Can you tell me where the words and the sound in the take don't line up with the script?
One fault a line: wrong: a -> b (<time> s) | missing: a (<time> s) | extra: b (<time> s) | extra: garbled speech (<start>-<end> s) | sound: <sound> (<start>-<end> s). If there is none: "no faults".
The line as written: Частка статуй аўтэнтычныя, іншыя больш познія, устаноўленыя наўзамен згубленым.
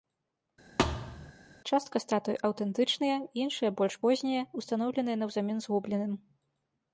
sound: thud (0.8-1.3 s)